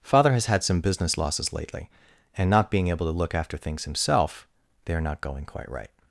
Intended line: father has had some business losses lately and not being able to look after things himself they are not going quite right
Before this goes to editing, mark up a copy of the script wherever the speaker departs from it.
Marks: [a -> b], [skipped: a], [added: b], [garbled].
father has had some business losses lately and not being able to look after things himself they are not going quite right